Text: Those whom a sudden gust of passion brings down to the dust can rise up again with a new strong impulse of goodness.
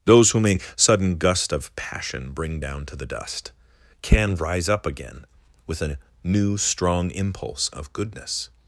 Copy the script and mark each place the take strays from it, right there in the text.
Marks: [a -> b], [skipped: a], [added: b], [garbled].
Those whom a sudden gust of passion [brings -> bring] down to the dust can rise up again with a new strong impulse of goodness.